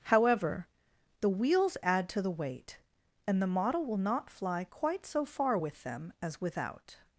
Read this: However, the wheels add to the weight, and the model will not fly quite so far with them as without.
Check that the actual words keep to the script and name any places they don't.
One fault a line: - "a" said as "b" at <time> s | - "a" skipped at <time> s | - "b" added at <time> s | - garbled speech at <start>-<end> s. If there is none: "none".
none